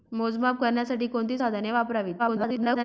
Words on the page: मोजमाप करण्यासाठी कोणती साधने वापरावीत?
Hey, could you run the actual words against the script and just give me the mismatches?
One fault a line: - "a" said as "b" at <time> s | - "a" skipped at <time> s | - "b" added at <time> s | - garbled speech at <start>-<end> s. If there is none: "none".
- garbled speech at 2.2-2.8 s